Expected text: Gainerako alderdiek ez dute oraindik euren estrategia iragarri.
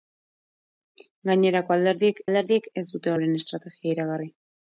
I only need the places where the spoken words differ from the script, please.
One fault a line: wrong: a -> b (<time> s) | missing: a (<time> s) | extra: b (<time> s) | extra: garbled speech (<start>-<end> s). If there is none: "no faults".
extra: alderdiek (2.2 s)
missing: oraindik (3.1 s)